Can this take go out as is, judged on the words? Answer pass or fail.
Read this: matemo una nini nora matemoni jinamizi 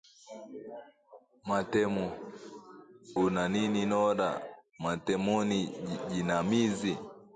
pass